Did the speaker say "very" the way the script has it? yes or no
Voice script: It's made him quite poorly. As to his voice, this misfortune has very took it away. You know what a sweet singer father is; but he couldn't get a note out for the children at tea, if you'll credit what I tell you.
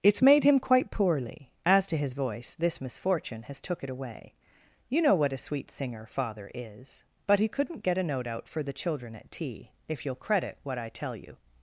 no